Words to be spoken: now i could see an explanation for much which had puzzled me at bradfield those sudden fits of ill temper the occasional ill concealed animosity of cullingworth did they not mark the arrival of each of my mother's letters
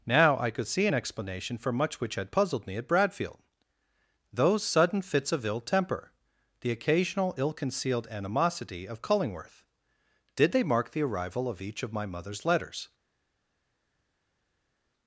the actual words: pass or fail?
fail